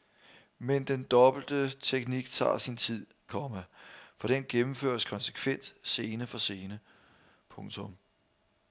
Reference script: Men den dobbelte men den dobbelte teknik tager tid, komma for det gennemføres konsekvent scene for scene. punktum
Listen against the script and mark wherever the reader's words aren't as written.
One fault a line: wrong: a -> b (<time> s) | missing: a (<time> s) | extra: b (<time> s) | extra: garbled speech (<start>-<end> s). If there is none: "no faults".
missing: men den dobbelte (1.7 s)
extra: sin (2.6 s)
wrong: det -> den (4.2 s)